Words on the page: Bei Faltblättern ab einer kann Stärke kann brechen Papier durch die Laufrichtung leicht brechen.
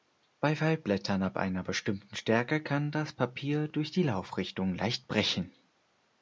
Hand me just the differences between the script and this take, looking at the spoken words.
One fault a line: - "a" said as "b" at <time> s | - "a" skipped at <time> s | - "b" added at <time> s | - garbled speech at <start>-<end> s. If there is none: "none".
- "kann" said as "bestimmten" at 1.6 s
- "brechen" said as "das" at 2.9 s